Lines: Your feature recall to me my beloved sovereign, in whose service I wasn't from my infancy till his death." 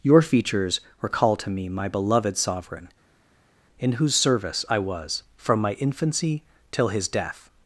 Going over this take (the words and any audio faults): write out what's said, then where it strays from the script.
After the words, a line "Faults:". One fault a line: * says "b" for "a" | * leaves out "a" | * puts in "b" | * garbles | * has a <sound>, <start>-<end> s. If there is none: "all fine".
Your features recall to me my beloved sovereign, in whose service I was from my infancy till his death."
Faults:
* says "features" for "feature"
* says "was" for "wasn't"